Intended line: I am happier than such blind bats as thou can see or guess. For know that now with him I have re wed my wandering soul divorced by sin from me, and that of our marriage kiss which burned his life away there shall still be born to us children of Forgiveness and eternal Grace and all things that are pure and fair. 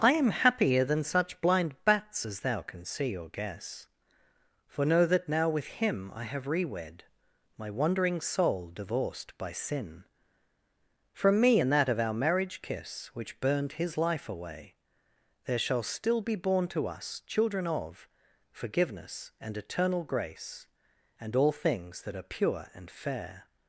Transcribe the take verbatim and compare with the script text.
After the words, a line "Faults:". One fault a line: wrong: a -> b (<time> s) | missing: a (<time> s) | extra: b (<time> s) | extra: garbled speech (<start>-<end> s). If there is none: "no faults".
I am happier than such blind bats as thou can see or guess. For know that now with him I have re wed my wandering soul divorced by sin from me, and that of our marriage kiss which burned his life away there shall still be born to us children of Forgiveness and eternal Grace and all things that are pure and fair.
Faults:
no faults